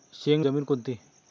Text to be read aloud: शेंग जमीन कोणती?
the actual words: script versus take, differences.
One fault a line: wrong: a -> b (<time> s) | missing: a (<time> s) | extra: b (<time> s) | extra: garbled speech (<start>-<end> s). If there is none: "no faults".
no faults